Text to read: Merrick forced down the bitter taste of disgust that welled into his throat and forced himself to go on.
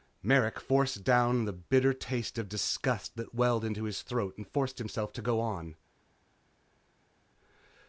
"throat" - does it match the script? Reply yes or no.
yes